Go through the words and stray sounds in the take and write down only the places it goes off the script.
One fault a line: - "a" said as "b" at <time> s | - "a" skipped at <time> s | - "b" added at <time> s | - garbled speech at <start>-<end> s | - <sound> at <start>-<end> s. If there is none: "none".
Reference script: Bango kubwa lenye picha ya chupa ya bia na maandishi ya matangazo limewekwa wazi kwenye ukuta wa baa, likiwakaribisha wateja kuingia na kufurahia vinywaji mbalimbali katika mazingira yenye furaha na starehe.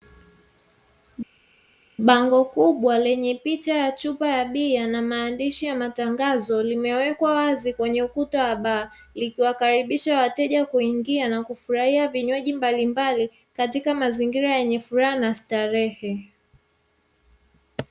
none